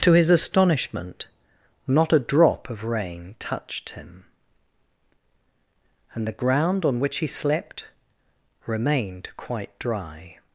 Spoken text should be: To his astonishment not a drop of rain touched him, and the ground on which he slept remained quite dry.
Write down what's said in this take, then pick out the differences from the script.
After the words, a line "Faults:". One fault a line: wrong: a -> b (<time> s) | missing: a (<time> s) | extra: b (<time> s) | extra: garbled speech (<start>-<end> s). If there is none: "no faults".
To his astonishment not a drop of rain touched him, and the ground on which he slept remained quite dry.
Faults:
no faults